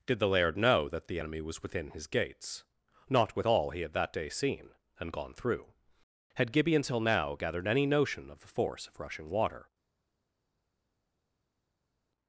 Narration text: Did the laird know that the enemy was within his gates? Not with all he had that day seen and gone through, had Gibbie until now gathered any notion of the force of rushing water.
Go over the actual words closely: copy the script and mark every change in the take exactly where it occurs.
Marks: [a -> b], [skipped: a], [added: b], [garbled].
Did the laird know that the enemy was within his gates? Not with all he had that day seen and gone through, had Gibbie until now gathered any notion of the force of rushing water.